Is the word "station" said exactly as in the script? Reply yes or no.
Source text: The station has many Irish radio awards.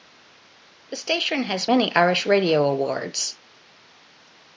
yes